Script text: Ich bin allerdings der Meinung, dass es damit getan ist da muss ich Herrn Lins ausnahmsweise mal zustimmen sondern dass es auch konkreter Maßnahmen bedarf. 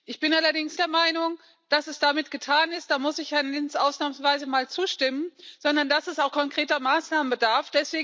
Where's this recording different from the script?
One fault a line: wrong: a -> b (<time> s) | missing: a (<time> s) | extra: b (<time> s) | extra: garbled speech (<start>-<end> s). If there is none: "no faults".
no faults